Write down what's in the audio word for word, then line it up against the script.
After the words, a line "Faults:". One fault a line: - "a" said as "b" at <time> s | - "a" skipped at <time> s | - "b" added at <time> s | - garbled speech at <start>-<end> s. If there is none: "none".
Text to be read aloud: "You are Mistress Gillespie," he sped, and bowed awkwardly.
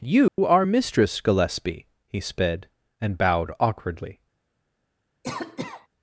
"You are Mistress Gillespie," he sped, and bowed awkwardly.
Faults:
none